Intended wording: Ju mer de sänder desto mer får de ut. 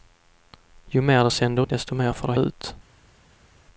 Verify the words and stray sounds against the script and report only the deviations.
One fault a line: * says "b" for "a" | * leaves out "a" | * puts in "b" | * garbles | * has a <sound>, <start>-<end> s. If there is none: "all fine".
all fine